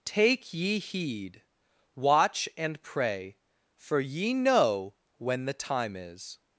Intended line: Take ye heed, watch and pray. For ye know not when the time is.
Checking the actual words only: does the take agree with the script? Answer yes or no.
no